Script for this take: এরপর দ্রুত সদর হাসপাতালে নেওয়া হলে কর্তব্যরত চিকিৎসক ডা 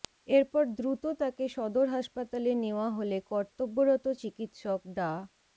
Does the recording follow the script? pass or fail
fail